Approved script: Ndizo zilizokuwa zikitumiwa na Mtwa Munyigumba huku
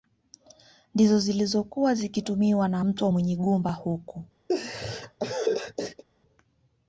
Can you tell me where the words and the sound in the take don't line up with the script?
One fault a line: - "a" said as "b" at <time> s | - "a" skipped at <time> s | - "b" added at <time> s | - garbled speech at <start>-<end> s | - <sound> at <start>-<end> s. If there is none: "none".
- laugh at 4.5-6.0 s